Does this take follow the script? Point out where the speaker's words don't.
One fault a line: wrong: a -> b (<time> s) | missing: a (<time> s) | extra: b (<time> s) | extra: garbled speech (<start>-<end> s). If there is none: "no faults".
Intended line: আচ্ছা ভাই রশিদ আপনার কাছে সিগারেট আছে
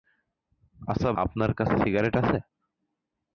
missing: ভাই রশিদ (1.1 s)